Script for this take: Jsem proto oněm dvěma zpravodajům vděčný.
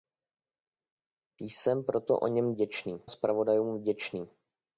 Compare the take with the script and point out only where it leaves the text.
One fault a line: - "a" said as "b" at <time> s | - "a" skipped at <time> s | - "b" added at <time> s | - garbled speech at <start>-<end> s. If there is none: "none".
- "dvěma" said as "vděčný" at 2.5 s